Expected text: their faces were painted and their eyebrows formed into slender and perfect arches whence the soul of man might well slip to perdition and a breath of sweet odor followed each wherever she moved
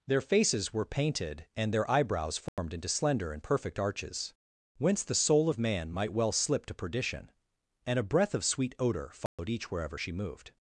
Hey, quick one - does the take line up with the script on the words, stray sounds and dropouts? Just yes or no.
no